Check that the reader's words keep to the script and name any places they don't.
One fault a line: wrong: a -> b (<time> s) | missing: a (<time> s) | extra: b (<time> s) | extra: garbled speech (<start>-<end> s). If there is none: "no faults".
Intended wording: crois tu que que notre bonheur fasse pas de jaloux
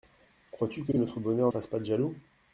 no faults